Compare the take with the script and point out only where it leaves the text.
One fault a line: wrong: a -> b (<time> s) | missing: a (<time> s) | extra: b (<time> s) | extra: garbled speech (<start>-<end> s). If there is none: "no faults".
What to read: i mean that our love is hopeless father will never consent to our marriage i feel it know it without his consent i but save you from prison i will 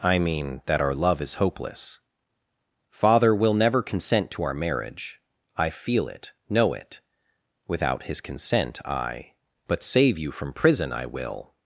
no faults